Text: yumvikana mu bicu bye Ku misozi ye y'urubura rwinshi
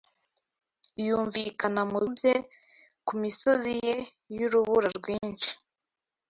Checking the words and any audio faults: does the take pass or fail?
fail